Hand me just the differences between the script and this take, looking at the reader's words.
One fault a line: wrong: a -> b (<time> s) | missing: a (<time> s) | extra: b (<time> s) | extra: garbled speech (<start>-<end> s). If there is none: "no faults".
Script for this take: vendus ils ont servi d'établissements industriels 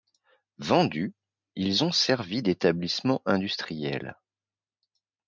no faults